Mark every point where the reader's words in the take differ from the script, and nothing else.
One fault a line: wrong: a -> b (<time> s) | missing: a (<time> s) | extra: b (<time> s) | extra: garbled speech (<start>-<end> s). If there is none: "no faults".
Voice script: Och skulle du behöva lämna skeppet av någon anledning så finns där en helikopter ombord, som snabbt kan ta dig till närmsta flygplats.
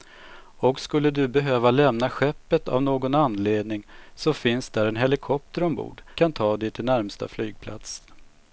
missing: som snabbt (6.0 s)